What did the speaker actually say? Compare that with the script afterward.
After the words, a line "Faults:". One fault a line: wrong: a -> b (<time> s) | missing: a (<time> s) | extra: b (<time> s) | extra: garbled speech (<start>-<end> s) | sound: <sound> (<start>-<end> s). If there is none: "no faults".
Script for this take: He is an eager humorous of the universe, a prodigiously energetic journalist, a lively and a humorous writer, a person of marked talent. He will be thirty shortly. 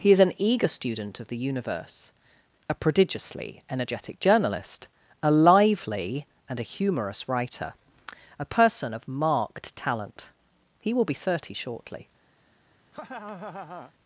He is an eager student of the universe, a prodigiously energetic journalist, a lively and a humorous writer, a person of marked talent. He will be thirty shortly.
Faults:
wrong: humorous -> student (0.7 s)
sound: laugh (12.9-13.9 s)